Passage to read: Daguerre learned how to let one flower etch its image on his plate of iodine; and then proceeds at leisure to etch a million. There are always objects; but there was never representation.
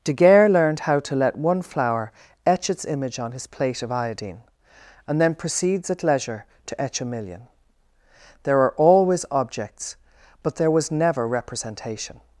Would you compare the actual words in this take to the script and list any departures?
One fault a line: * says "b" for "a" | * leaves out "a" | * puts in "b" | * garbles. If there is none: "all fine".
all fine